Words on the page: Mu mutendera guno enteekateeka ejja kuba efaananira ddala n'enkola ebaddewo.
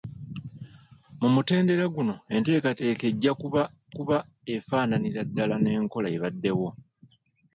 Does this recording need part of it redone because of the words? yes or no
yes